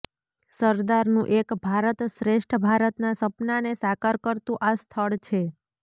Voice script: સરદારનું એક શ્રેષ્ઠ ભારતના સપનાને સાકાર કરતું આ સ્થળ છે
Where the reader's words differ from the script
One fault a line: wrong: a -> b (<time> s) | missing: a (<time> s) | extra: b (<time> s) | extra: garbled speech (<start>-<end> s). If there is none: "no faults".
extra: ભારત (1.6 s)